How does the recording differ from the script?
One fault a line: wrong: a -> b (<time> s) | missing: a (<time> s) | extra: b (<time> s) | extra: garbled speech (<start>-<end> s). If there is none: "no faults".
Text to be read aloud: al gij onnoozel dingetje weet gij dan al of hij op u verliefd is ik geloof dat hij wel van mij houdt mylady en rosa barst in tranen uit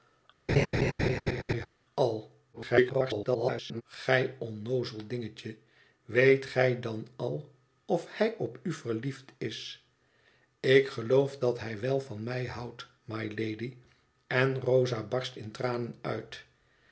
extra: garbled speech (2.5-3.8 s)